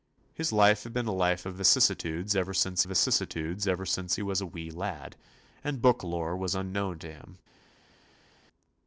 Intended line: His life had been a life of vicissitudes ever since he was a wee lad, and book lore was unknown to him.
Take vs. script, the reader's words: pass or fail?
fail